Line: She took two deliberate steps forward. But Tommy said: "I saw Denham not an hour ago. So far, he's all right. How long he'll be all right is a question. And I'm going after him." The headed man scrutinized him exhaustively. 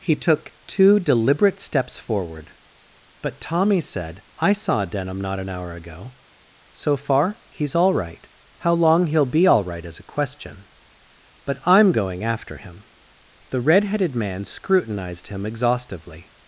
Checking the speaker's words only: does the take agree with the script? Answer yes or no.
no